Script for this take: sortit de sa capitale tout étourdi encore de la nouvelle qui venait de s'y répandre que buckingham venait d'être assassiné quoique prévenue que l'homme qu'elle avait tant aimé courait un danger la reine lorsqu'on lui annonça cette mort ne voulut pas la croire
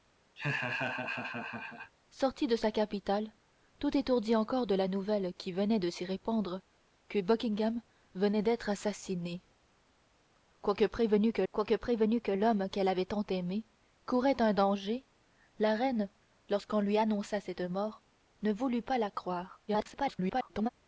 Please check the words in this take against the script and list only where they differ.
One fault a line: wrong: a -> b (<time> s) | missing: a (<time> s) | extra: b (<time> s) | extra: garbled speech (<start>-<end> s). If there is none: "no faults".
extra: quoique prévenue que (11.5 s)
extra: garbled speech (19.7-20.7 s)